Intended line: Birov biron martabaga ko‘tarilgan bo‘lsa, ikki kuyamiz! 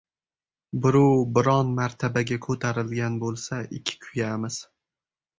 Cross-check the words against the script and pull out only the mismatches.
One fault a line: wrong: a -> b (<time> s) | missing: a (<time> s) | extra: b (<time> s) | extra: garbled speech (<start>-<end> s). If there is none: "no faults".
no faults